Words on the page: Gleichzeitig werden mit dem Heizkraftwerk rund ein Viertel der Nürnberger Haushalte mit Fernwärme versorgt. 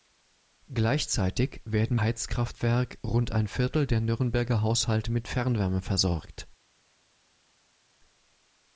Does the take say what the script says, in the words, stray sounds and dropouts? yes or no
no